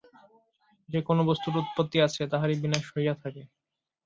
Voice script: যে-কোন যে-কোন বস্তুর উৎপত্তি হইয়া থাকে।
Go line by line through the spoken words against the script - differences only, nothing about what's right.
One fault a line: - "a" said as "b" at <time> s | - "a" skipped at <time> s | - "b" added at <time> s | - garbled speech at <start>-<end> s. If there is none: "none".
- "যে-কোন" skipped at 1.2 s
- "আছে তাহারই বিনাশ" added at 2.0 s